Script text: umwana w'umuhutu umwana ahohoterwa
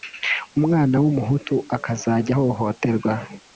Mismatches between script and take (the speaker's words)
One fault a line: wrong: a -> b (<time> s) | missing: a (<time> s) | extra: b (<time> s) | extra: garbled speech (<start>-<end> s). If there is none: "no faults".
wrong: umwana -> akazajya (1.8 s)